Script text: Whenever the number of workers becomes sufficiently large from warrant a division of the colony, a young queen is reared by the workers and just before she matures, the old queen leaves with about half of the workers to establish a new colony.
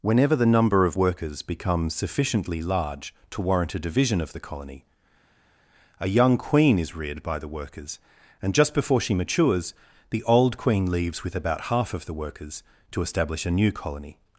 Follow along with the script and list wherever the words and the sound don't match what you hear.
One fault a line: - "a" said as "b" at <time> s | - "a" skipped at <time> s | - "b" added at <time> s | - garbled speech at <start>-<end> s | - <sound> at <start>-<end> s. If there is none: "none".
- "from" said as "to" at 3.3 s